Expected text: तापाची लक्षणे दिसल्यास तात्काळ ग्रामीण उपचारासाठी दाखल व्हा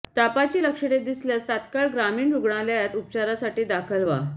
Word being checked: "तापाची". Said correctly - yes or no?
yes